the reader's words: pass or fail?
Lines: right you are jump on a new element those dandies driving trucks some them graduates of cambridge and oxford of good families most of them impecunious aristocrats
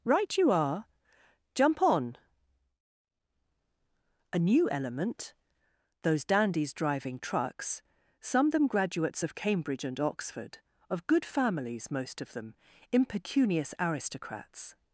pass